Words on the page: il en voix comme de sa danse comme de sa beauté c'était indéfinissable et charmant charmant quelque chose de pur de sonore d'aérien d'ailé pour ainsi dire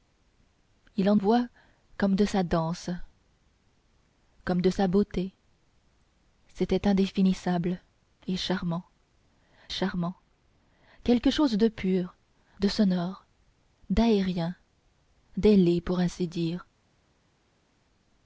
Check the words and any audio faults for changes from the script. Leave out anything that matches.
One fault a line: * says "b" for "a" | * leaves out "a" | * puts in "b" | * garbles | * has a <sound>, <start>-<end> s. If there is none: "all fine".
all fine